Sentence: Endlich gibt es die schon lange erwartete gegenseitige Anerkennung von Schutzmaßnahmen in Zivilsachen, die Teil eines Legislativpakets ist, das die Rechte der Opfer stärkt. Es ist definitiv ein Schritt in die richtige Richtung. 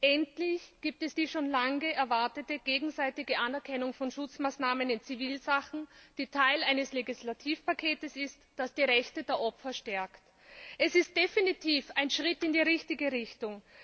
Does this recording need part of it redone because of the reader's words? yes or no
no